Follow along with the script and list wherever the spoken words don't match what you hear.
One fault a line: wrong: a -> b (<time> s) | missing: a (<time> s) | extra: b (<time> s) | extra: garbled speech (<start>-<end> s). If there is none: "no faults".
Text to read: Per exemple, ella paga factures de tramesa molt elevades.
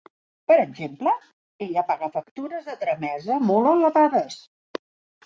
no faults